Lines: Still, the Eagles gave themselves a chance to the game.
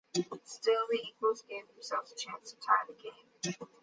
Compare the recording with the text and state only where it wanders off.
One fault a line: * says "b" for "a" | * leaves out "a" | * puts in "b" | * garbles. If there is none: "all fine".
* puts in "tie"